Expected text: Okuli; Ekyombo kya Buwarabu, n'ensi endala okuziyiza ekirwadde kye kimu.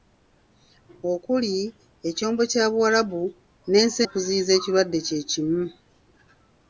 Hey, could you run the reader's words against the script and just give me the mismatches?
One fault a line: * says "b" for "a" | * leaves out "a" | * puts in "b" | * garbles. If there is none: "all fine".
* leaves out "endala"